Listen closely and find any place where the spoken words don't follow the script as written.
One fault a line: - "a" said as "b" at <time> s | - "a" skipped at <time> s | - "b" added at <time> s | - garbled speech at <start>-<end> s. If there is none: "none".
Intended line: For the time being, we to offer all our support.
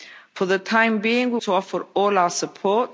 none